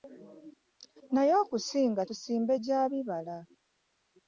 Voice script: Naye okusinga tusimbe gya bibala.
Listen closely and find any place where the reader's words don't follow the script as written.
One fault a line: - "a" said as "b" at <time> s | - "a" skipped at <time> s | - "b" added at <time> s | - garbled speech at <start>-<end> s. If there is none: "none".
none